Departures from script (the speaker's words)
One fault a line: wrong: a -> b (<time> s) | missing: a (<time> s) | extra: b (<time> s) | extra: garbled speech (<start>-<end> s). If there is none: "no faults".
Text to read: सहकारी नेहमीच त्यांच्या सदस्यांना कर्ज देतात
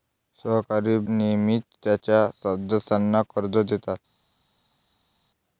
no faults